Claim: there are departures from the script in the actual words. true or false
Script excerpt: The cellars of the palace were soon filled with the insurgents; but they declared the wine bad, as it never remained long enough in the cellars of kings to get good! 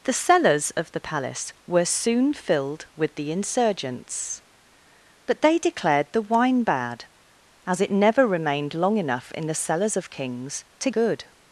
true